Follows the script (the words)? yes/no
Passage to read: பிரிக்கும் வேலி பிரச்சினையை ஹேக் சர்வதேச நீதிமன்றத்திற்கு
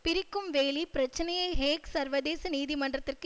yes